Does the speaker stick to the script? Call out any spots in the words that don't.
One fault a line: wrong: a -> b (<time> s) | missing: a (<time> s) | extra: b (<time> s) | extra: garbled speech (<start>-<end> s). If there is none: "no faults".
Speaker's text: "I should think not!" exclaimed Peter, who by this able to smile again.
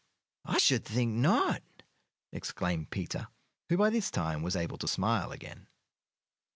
extra: time was (4.1 s)